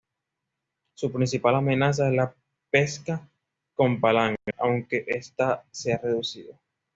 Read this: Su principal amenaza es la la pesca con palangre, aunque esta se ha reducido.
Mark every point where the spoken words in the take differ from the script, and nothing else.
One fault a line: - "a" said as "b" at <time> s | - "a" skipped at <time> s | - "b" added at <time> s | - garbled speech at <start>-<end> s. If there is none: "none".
- "la" skipped at 2.3 s